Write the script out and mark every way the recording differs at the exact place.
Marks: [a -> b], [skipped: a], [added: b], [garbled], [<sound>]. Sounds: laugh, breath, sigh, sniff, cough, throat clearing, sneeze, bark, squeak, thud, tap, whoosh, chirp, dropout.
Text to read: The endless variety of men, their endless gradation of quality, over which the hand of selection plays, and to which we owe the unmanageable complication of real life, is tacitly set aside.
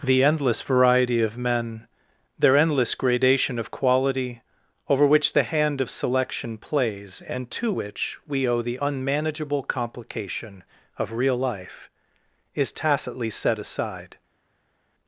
The endless variety of men, their endless gradation of quality, over which the hand of selection plays, and to which we owe the unmanageable complication of real life, is tacitly set aside.